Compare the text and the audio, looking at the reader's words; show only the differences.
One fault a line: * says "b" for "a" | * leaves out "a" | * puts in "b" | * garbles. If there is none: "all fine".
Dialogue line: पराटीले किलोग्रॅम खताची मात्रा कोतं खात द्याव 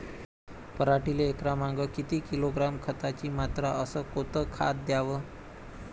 * puts in "एकरामागं किती"
* puts in "अस"